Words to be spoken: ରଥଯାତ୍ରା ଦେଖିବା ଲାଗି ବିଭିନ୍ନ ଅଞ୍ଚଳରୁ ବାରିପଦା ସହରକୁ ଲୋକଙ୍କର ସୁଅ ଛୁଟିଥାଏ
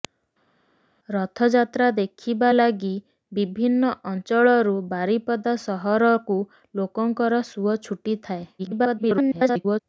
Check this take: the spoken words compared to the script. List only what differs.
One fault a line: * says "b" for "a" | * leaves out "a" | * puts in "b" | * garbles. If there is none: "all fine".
* garbles